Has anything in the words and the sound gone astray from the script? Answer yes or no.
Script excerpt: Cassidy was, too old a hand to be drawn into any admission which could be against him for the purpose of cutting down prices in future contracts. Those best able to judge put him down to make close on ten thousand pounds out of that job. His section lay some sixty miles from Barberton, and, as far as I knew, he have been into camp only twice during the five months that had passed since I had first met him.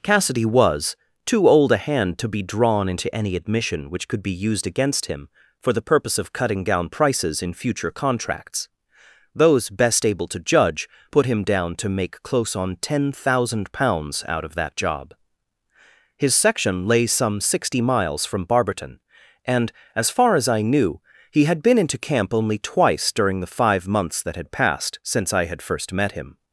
yes